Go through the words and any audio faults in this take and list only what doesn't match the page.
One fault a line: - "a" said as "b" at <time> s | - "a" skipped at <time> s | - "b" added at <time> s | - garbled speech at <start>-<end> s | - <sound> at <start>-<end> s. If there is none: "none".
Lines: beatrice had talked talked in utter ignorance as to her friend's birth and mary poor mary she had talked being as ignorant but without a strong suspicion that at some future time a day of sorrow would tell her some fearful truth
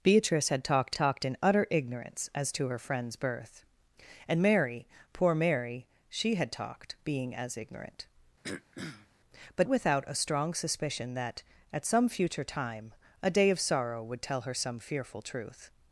- throat clearing at 8.4-9.1 s